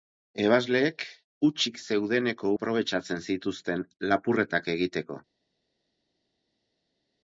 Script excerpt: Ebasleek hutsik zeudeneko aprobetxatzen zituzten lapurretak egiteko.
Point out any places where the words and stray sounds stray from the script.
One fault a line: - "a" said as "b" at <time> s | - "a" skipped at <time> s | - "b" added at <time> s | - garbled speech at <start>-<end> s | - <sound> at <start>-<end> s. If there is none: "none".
none